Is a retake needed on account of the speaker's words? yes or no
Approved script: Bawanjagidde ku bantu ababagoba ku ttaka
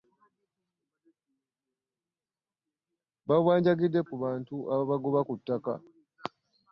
no